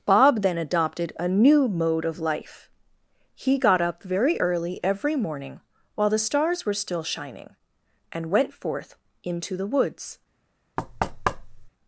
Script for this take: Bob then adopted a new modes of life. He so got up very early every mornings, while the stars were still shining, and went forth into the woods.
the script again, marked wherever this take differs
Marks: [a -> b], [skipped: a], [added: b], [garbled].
Bob then adopted a new [modes -> mode] of life. He [skipped: so] got up very early every [mornings, -> morning] while the stars were still shining, and went forth into the woods.